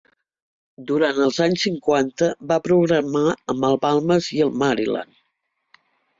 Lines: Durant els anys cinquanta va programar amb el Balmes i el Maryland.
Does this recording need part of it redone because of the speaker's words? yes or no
no